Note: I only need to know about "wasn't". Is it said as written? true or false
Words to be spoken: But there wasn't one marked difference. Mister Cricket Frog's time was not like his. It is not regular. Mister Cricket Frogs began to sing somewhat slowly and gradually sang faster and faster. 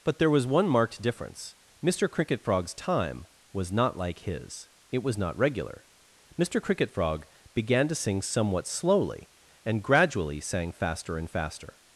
false